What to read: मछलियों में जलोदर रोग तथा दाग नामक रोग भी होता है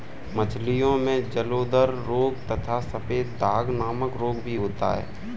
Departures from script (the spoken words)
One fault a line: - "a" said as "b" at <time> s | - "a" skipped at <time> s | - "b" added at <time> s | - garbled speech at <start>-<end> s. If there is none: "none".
- "सफेद" added at 2.8 s